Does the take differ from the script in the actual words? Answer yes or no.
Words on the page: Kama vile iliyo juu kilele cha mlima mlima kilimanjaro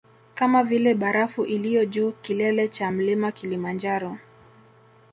yes